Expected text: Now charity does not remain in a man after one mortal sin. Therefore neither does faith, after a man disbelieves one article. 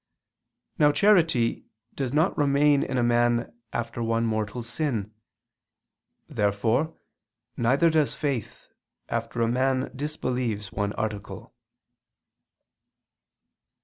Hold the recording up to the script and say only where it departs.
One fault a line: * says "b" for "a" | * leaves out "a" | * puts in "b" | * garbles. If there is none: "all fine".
all fine